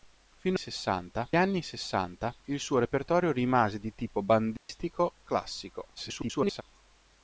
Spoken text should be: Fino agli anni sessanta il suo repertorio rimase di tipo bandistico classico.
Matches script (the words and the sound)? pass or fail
fail